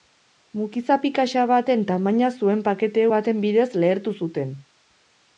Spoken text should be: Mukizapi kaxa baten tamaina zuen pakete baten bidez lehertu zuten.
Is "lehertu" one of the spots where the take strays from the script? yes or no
no